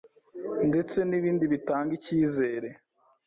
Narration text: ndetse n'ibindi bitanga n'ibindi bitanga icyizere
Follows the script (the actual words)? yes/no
no